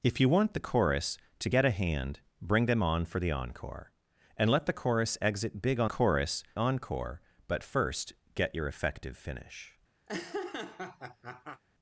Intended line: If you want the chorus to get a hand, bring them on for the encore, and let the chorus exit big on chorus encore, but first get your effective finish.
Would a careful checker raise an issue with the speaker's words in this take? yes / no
no